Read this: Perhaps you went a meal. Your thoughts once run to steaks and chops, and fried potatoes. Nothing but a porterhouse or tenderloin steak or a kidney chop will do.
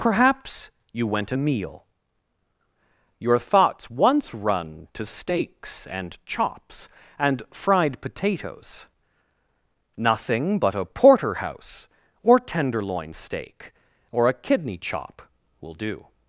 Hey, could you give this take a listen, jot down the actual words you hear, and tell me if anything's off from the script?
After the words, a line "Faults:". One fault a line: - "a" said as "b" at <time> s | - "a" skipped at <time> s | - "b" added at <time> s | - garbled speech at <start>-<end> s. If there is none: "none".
Perhaps you went a meal. Your thoughts once run to steaks and chops, and fried potatoes. Nothing but a porterhouse or tenderloin steak or a kidney chop will do.
Faults:
none